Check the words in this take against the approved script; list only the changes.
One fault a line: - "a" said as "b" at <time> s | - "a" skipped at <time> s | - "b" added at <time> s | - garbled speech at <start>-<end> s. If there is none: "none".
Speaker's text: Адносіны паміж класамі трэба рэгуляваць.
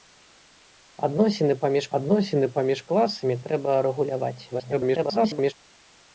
- "адносіны паміж" added at 2.0 s
- garbled speech at 4.5-5.5 s